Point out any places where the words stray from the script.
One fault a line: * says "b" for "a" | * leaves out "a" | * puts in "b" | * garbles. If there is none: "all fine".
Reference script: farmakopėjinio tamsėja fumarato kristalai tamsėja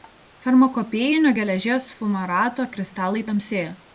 * says "geležies" for "tamsėja"